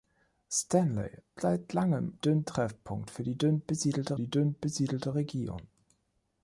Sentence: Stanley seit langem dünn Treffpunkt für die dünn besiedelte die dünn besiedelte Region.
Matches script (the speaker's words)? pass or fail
pass